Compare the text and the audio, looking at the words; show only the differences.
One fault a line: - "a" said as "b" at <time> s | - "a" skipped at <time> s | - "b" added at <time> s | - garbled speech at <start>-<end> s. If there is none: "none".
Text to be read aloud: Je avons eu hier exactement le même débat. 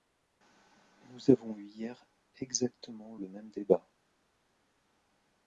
- "Je" said as "Nous" at 1.1 s